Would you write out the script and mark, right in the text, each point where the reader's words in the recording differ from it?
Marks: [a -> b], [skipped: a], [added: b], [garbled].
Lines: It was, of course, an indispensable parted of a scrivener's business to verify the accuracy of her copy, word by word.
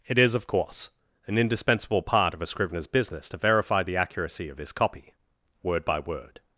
It [was, -> is] of course, an indispensable [parted -> part] of a scrivener's business to verify the accuracy of [her -> his] copy, word by word.